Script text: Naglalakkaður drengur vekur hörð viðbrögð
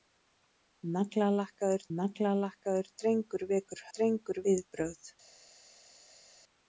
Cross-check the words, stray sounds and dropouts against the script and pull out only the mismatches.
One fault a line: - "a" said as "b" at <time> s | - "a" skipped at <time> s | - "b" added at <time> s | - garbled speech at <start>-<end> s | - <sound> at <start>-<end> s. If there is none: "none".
- "naglalakkaður" added at 2.0 s
- "hörð" said as "drengur" at 4.0 s